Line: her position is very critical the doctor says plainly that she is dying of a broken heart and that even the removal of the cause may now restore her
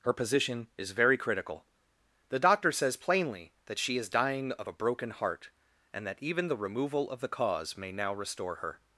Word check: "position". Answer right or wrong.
right